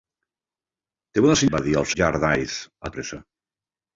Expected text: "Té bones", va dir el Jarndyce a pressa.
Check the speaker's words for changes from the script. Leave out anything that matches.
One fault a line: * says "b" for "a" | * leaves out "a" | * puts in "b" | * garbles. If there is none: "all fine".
all fine